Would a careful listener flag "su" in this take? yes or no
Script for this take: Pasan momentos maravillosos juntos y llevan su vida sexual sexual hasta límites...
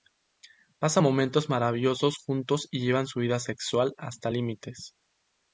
no